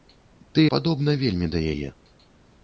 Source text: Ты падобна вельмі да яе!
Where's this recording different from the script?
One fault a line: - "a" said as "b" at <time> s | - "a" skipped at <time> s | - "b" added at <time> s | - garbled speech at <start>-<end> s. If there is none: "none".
none